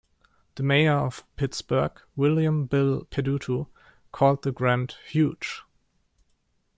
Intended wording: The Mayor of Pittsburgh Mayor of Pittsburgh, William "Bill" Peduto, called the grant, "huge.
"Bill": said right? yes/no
yes